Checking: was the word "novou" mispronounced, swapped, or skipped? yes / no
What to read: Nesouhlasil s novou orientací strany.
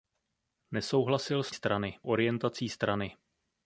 yes